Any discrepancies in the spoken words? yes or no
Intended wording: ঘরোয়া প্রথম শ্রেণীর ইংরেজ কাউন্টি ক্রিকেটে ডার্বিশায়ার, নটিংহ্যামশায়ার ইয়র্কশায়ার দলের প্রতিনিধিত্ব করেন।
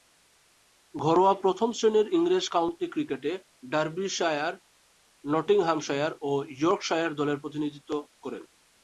yes